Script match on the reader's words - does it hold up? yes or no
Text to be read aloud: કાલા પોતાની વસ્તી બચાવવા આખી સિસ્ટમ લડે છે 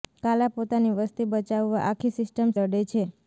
yes